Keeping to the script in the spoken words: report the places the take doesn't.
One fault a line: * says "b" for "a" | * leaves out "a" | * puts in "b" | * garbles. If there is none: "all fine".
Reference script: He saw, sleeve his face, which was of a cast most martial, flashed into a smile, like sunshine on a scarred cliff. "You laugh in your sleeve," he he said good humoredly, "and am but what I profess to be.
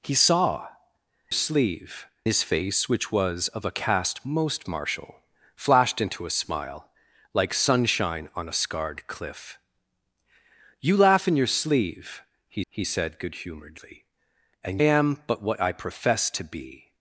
all fine